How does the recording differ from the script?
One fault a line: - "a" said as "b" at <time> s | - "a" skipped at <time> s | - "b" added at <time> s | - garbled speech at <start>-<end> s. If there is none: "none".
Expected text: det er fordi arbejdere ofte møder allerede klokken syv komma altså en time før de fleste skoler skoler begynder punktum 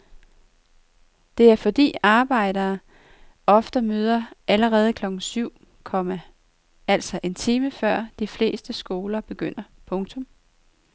- "skoler" skipped at 9.2 s